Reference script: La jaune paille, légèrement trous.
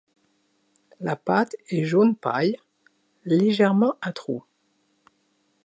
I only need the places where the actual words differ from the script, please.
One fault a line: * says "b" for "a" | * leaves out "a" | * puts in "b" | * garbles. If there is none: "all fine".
* puts in "pâte est"
* puts in "à"